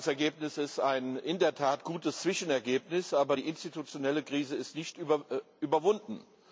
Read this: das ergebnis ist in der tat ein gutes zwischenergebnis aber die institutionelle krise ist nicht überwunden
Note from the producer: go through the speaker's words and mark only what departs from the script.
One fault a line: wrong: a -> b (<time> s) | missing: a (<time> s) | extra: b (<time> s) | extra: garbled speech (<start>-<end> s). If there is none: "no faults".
no faults